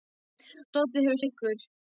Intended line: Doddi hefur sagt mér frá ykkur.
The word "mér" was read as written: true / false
false